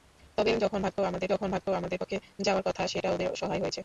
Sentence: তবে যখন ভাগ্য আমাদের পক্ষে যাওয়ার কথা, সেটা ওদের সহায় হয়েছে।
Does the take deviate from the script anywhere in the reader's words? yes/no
yes